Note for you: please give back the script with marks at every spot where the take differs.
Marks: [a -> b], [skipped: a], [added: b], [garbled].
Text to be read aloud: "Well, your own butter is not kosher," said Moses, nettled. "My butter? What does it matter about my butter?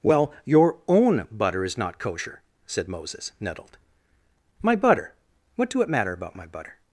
"Well, your own butter is not kosher," said Moses, nettled. "My butter? What [does -> do] it matter about my butter?